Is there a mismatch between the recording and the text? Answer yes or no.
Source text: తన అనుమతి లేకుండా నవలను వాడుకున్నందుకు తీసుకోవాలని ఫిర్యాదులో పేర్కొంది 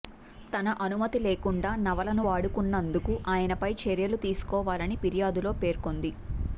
yes